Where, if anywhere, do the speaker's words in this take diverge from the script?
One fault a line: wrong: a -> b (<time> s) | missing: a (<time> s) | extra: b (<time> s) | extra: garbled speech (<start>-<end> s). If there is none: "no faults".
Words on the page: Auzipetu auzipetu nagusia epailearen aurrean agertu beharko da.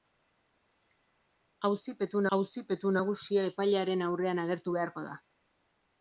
no faults